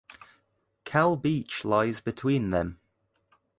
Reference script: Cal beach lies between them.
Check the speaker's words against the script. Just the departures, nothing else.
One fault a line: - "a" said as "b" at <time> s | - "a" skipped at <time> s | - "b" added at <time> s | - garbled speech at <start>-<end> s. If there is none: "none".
none